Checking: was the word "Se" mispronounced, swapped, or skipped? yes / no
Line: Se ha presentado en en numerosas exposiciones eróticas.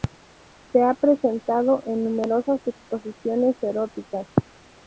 no